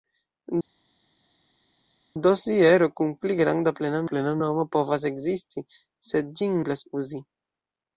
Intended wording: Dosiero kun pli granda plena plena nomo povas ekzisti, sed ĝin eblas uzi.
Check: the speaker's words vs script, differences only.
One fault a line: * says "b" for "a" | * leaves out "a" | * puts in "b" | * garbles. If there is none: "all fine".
all fine